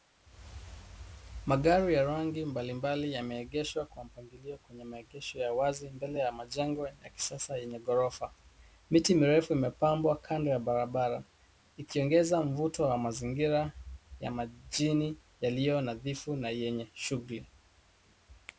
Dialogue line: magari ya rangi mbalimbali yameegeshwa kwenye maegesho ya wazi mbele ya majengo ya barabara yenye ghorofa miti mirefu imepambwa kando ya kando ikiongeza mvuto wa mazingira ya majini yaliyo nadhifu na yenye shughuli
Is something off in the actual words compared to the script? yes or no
yes